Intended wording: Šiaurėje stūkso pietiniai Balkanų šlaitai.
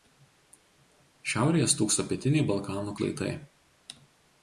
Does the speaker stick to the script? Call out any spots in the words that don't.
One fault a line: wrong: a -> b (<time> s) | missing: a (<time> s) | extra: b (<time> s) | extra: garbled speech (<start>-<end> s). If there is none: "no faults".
no faults